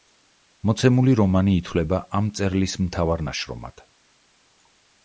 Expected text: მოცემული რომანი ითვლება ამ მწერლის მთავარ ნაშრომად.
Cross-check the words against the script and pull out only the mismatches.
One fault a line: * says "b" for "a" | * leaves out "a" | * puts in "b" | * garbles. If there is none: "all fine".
all fine